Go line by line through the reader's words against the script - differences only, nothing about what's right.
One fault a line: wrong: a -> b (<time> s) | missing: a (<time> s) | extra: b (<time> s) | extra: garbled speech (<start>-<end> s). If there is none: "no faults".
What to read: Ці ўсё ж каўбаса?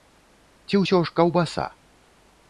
no faults